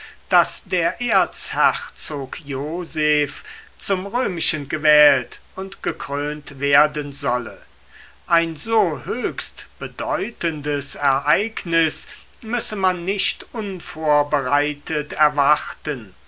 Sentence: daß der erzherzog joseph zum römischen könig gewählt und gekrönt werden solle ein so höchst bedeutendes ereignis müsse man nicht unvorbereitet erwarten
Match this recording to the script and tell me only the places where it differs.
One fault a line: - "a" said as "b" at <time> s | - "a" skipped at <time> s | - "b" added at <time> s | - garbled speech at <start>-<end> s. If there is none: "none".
- "könig" skipped at 4.7 s